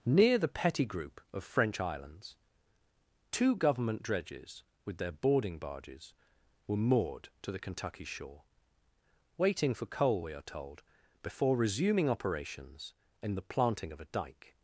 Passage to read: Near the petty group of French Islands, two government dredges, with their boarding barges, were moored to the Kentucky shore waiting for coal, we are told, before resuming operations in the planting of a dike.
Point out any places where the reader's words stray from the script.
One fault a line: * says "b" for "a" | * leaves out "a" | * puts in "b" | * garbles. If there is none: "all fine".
all fine